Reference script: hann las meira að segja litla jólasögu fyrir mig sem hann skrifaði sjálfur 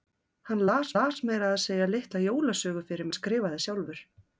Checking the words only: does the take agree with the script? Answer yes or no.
no